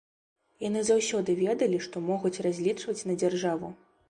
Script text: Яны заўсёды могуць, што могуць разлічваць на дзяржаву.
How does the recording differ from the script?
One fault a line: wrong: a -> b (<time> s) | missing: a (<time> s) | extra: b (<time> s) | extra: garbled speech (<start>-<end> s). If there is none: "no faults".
wrong: могуць -> ведалі (1.4 s)